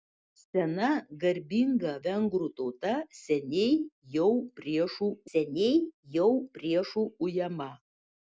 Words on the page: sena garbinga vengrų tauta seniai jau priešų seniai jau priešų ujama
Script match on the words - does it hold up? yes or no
yes